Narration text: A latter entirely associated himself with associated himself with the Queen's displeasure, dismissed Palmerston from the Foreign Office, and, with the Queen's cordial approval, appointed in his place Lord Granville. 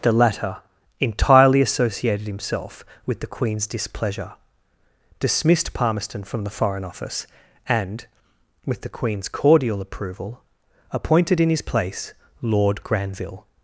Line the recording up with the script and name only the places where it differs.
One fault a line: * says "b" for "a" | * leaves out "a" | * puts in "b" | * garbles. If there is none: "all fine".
* says "The" for "A"
* leaves out "associated himself with"